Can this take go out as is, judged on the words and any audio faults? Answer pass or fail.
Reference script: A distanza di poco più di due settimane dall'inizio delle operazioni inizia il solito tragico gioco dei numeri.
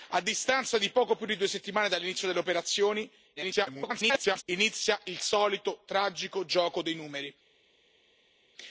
fail